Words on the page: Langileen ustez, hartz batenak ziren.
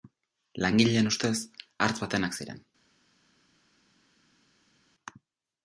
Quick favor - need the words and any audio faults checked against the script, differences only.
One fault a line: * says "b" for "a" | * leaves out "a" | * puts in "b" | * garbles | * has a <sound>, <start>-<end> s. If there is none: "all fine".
all fine